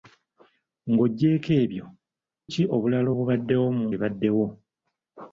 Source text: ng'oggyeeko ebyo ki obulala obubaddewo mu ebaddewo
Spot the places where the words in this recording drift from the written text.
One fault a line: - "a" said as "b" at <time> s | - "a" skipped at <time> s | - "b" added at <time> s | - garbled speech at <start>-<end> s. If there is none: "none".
none